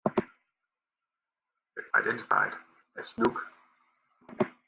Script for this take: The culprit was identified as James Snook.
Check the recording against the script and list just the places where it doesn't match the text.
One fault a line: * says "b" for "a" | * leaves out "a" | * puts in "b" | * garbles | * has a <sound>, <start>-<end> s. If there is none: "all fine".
* leaves out "culprit was"
* leaves out "James"